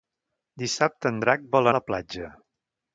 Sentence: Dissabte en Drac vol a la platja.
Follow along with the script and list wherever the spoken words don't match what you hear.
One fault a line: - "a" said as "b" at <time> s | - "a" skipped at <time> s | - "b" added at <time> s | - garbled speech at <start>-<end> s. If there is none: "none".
none